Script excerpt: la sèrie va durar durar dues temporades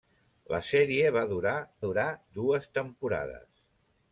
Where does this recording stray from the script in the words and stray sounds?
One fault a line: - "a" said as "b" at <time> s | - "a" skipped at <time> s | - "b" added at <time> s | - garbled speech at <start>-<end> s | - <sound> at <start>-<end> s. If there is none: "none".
none